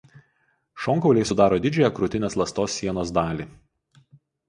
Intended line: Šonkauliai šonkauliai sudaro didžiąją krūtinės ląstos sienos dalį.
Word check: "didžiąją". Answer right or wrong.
right